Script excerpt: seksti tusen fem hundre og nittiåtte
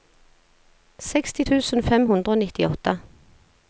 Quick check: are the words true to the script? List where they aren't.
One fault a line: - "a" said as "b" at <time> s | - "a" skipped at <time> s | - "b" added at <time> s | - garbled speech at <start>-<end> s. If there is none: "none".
none